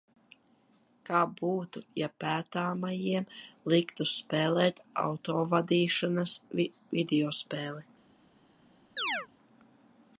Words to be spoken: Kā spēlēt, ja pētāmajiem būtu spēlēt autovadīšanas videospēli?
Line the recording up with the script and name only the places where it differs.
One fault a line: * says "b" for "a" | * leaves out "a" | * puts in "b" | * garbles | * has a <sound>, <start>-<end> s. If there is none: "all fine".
* says "būtu" for "spēlēt"
* says "liktu" for "būtu"
* has a chirp, 9.0-9.3 s